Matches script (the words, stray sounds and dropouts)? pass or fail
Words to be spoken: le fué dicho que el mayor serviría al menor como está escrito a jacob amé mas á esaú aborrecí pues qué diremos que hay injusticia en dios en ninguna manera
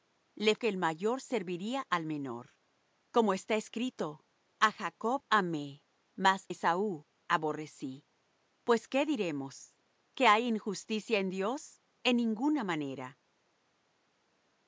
fail